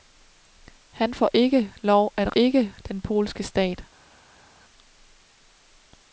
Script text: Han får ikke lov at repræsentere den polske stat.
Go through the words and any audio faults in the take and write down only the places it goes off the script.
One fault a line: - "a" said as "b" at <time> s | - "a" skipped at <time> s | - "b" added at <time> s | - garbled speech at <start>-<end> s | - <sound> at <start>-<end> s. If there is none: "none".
- "repræsentere" said as "ikke" at 2.3 s